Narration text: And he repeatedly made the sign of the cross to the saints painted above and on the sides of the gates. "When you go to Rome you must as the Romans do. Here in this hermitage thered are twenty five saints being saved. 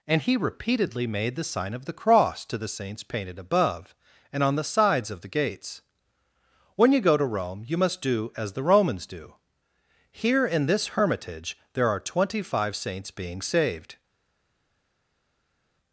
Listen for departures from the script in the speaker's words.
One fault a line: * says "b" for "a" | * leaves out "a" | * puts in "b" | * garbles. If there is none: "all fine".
* puts in "do"
* says "there" for "thered"